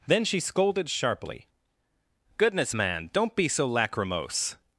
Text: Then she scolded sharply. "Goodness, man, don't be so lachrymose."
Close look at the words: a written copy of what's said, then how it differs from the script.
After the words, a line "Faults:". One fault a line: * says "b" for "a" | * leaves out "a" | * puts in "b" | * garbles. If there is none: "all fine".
Then she scolded sharply. "Goodness, man, don't be so lachrymose."
Faults:
all fine